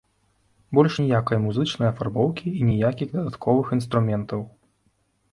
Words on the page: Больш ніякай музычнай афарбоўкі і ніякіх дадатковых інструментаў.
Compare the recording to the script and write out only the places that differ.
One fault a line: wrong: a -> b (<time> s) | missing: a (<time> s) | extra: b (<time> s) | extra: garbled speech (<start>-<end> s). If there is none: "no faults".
no faults